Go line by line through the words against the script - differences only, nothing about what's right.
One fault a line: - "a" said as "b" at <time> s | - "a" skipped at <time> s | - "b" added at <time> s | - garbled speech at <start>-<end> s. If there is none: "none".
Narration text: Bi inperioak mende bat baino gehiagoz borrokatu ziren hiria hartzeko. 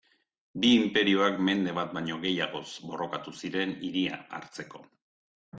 none